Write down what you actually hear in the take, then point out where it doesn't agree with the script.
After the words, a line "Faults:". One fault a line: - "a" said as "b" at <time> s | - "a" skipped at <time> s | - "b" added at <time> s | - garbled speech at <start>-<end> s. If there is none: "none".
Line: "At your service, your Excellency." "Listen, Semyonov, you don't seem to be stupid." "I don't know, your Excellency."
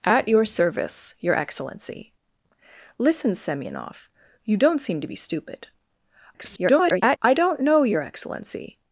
"At your service, your Excellency." "Listen, Semyonov, you don't seem to be stupid." [garbled] "I don't know, your Excellency."
Faults:
- garbled speech at 6.3-7.2 s